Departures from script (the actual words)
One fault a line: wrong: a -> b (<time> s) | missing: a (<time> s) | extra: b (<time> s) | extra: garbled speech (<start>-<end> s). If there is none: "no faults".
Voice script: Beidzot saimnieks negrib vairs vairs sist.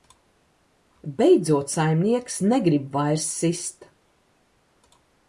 missing: vairs (3.3 s)